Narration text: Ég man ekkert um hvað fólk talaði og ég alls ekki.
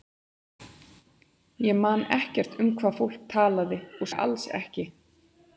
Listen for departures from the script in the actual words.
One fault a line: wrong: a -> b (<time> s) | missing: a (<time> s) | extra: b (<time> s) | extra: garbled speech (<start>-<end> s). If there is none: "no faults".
no faults